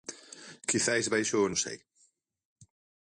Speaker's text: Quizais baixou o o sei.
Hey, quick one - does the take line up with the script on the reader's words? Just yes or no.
yes